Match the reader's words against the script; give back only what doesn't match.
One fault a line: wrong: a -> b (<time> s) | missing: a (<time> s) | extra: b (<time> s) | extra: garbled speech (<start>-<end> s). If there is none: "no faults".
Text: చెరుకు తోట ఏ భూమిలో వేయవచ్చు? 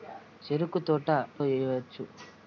missing: ఏ భూమిలో (1.1 s)